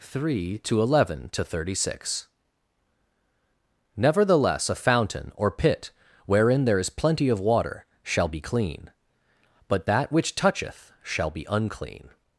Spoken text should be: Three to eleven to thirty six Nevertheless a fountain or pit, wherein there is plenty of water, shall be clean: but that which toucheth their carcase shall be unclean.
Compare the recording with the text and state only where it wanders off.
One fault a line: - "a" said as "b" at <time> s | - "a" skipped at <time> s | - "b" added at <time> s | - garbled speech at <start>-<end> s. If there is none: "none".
- "their carcase" skipped at 10.9 s